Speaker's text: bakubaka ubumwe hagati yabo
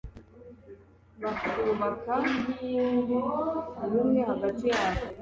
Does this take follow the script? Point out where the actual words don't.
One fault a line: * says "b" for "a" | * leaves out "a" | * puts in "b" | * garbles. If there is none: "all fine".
all fine